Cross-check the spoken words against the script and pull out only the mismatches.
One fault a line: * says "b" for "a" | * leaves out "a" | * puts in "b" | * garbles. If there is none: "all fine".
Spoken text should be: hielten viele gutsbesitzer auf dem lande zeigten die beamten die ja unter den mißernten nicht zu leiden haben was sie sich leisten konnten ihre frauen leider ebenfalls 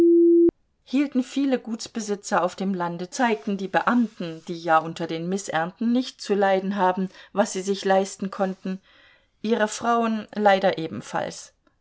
all fine